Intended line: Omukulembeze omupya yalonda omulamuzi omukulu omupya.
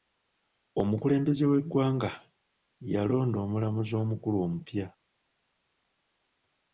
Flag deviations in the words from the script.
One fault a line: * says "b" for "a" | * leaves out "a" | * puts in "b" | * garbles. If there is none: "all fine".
* says "w'eggwanga" for "omupya"